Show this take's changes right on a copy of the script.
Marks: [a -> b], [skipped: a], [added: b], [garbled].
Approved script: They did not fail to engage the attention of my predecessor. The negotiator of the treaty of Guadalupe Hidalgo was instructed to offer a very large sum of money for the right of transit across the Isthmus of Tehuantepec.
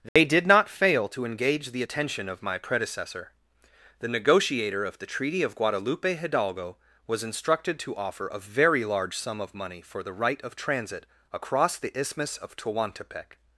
They did not fail to engage the attention of my predecessor. The negotiator of the treaty of Guadalupe Hidalgo was instructed to offer a very large sum of money for the right of transit across the Isthmus of Tehuantepec.